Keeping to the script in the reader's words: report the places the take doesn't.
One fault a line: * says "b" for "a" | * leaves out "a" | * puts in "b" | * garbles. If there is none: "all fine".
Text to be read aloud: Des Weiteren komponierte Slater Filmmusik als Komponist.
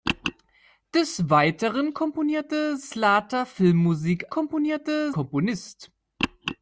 * says "komponierte" for "als"